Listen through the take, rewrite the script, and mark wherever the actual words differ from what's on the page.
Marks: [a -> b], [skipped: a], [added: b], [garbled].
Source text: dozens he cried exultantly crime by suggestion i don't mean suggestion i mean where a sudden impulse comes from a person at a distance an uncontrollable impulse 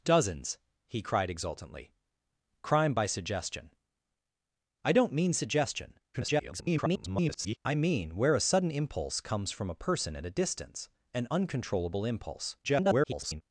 dozens he cried exultantly crime by suggestion i don't mean suggestion [garbled] i mean where a sudden impulse comes from a person at a distance an uncontrollable impulse [garbled]